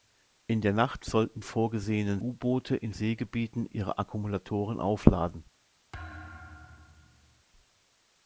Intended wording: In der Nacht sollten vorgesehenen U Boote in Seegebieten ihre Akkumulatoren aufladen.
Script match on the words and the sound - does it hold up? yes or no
no